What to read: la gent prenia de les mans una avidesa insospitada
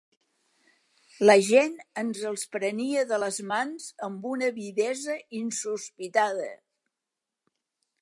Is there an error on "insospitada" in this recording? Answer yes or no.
no